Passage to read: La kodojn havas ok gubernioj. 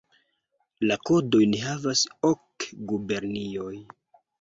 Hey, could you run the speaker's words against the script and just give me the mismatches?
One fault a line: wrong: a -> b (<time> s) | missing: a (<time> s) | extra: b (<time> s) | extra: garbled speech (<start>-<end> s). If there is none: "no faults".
no faults